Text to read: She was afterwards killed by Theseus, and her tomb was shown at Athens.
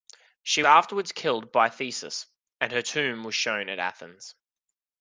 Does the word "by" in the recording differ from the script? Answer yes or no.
no